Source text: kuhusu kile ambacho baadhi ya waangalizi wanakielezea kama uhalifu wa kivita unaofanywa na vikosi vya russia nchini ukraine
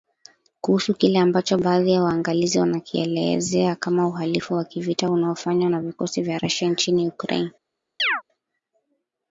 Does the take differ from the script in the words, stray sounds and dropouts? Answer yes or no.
yes